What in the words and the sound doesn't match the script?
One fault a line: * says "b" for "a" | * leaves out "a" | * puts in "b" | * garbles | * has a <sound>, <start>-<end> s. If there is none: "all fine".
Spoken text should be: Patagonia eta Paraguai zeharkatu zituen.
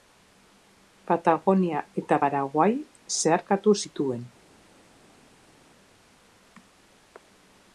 all fine